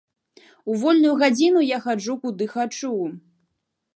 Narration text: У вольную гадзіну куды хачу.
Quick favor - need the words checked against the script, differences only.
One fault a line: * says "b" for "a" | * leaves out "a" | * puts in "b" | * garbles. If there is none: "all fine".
* puts in "я хаджу"